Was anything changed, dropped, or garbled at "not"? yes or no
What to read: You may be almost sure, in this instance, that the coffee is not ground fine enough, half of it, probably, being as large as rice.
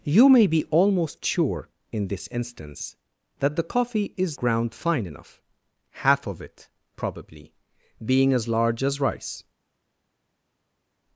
yes